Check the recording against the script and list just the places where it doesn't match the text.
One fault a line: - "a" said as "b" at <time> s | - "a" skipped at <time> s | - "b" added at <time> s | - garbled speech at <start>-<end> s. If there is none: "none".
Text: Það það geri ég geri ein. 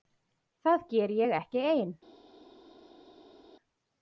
- "það" skipped at 0.8 s
- "geri" said as "ekki" at 1.4 s